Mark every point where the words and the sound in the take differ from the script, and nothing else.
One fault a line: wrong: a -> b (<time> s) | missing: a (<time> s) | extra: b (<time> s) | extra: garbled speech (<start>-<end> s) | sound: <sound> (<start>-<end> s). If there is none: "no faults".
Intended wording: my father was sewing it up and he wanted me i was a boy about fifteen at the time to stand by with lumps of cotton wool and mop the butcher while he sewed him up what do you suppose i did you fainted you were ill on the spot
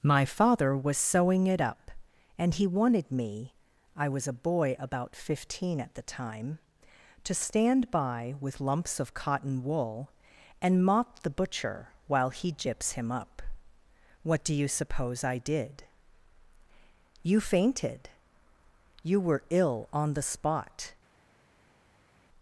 wrong: sewed -> gyps (12.5 s)